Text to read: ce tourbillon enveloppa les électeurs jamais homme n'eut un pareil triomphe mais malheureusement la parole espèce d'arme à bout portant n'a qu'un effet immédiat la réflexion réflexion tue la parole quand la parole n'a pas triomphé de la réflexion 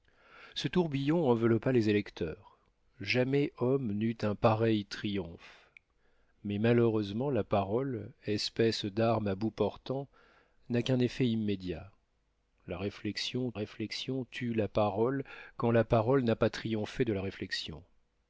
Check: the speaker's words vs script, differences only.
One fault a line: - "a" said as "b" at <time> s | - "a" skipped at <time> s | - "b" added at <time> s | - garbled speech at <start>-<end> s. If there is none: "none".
none